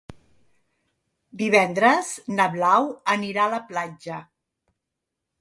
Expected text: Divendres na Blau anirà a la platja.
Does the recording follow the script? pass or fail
pass